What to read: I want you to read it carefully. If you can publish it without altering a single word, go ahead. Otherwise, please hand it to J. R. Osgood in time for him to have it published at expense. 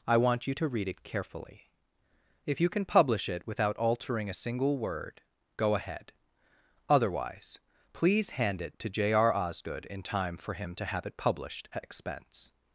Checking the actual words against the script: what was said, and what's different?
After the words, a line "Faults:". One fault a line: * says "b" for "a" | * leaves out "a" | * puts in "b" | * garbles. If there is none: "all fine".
I want you to read it carefully. If you can publish it without altering a single word, go ahead. Otherwise, please hand it to J. R. Osgood in time for him to have it published at expense.
Faults:
all fine